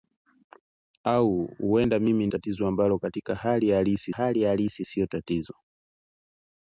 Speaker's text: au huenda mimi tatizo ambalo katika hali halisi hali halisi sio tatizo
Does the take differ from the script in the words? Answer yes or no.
no